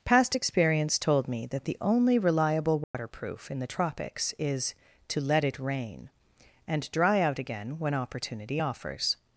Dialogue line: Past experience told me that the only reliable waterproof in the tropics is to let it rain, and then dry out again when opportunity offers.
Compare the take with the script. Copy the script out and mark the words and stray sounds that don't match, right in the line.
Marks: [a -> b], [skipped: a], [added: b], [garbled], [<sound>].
Past experience told me that the only reliable waterproof [dropout] in the tropics is to let it rain, and [skipped: then] dry out again when opportunity offers.